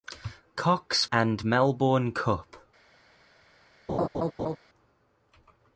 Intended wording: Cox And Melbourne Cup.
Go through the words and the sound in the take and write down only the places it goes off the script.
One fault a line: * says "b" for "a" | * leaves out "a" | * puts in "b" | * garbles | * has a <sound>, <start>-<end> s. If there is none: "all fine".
* has a laugh, 3.9-4.6 s